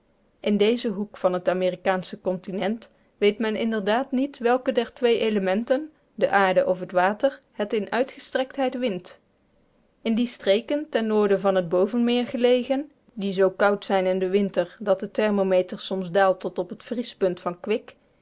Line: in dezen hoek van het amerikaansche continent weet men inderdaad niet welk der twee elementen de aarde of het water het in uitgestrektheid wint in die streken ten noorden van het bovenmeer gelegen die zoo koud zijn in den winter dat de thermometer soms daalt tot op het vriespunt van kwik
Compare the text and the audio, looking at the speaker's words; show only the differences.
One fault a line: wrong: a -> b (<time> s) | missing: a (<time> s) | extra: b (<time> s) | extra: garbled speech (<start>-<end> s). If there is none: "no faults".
no faults